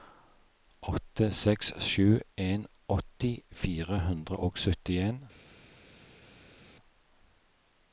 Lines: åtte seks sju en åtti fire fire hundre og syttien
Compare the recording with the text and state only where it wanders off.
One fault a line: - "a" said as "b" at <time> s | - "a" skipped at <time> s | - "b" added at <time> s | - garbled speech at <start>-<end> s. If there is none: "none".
- "fire" skipped at 4.0 s